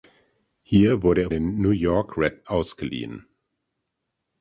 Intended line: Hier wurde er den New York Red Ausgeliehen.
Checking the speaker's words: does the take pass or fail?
pass